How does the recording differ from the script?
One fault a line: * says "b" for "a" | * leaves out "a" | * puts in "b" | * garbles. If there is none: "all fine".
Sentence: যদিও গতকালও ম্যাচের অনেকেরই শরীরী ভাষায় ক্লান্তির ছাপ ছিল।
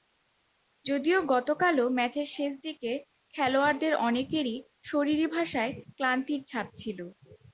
* puts in "শেষ দিকে খেলোয়াড়দের"